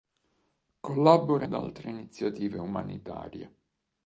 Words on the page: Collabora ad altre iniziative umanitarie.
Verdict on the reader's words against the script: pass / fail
pass